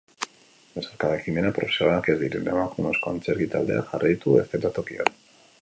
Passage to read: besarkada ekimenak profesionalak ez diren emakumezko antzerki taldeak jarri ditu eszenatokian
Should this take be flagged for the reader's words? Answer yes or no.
no